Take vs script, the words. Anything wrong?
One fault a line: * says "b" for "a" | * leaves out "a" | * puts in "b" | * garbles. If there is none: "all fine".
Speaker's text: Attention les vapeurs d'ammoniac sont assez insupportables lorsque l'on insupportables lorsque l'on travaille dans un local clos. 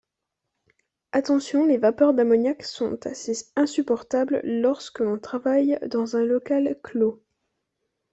* leaves out "insupportables lorsque l'on"